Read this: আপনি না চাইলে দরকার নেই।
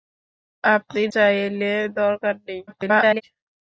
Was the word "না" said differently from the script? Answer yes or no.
yes